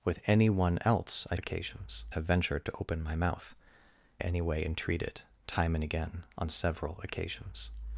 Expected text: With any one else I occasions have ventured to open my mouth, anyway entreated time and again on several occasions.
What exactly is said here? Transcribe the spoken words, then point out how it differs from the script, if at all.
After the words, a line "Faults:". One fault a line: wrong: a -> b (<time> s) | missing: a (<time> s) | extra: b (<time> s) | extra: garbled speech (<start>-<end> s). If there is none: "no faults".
With any one else I occasions have ventured to open my mouth, anyway entreated time and again on several occasions.
Faults:
no faults